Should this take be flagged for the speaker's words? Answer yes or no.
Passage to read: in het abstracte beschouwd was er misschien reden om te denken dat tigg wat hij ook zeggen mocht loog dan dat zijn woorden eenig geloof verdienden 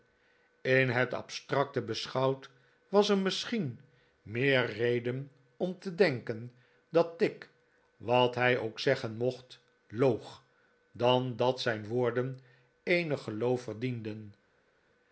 yes